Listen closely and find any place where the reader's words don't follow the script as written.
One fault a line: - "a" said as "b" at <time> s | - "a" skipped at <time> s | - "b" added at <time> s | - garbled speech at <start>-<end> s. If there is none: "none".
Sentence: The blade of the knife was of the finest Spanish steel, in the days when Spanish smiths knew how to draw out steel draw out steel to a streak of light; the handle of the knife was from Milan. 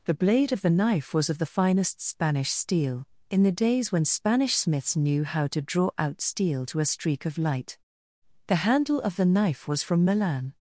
- "draw out steel" skipped at 6.6 s